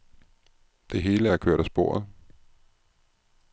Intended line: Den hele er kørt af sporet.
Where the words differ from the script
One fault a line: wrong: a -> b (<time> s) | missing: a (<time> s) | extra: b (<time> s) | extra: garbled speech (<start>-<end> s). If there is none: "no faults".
wrong: Den -> Det (0.9 s)